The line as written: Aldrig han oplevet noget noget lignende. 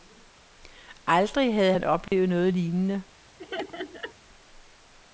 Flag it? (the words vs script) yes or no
yes